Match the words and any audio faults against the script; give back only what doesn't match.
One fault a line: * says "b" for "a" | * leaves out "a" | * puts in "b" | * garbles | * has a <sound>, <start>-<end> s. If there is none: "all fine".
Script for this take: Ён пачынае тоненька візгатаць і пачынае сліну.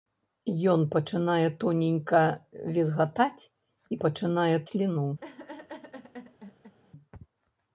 * has a laugh, 5.2-6.8 s